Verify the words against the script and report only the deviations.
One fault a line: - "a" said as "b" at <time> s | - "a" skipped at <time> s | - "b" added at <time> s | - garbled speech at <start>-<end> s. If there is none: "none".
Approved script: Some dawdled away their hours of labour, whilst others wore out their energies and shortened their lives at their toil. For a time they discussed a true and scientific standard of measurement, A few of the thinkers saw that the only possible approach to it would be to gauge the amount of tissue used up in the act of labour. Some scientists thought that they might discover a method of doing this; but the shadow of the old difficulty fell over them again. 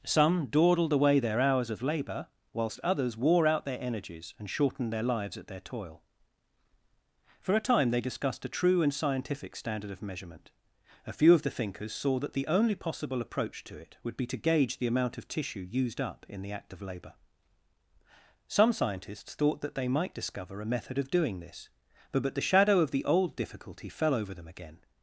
- "but" added at 22.2 s